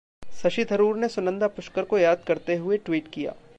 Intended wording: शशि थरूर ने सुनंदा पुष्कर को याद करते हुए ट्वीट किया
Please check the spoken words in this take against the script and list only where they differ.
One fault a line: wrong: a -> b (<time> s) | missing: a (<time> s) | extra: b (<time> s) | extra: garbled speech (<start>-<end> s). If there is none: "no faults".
no faults